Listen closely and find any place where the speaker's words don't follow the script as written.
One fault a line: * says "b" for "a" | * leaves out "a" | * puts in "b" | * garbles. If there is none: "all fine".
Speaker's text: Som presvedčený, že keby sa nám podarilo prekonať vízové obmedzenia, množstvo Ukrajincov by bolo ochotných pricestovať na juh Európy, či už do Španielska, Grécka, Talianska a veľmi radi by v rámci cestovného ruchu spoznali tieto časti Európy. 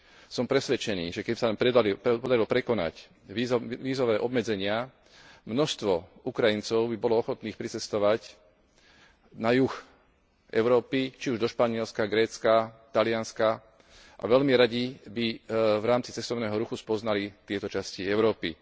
all fine